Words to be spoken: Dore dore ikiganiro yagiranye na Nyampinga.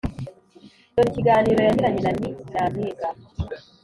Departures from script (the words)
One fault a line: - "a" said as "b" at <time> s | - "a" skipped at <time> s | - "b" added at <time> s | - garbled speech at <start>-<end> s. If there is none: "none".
- "dore" skipped at 1.1 s
- "Ni" added at 2.2 s